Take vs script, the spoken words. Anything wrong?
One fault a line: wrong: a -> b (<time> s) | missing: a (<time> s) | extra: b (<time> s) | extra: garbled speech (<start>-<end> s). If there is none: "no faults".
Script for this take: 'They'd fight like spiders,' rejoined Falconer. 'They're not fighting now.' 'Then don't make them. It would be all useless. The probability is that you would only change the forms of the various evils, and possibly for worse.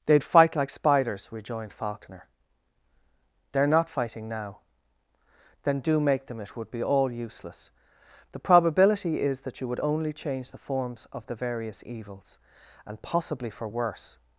wrong: don't -> do (5.8 s)